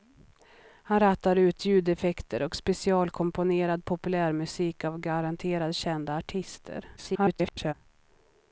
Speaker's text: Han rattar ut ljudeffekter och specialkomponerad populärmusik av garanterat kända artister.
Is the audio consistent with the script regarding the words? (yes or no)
no